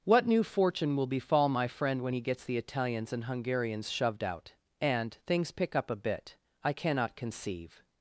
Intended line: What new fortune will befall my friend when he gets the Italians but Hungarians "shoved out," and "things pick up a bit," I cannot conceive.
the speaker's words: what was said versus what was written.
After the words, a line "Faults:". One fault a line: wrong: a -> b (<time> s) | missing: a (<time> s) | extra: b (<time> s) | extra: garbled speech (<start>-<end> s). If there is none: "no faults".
What new fortune will befall my friend when he gets the Italians and Hungarians "shoved out," and "things pick up a bit," I cannot conceive.
Faults:
wrong: but -> and (3.1 s)